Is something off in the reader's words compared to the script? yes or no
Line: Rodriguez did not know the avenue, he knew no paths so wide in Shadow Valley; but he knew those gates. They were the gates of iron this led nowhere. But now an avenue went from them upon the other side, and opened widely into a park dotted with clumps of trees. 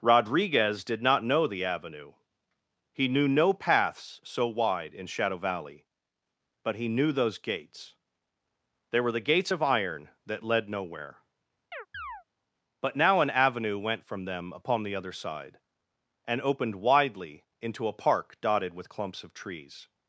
yes